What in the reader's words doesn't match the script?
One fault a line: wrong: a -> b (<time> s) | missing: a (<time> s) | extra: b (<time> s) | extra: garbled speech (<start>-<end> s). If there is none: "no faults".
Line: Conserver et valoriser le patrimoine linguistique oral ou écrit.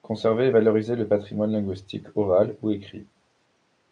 no faults